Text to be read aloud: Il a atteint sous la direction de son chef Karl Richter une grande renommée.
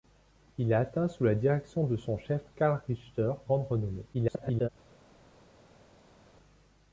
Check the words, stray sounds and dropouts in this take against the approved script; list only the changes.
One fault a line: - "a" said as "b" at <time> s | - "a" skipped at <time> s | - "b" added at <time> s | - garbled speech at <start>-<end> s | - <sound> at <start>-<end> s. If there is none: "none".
- "une" skipped at 3.3 s
- garbled speech at 4.1-4.7 s